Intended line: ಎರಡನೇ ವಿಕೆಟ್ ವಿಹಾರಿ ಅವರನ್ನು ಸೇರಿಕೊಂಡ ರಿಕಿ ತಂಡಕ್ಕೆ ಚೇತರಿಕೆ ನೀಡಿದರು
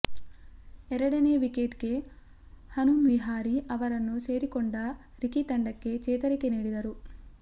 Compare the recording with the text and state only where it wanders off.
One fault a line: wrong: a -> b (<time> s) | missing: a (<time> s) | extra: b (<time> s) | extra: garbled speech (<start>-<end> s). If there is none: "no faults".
extra: ಗೆ ಹನುಮ್ (1.8 s)